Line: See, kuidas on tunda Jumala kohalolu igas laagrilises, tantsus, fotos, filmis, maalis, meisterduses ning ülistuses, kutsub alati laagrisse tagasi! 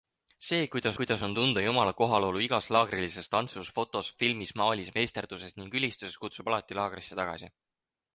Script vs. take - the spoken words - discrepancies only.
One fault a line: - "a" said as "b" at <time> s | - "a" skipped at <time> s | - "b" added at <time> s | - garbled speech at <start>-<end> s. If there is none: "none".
- "kuidas" added at 1.0 s